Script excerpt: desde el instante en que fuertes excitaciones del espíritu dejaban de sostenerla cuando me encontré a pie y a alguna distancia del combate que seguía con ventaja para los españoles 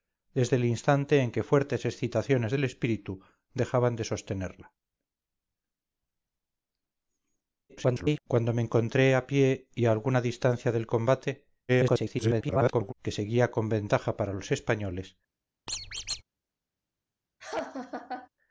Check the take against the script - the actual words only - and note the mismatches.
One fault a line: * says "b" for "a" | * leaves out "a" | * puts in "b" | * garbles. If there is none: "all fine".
* garbles
* garbles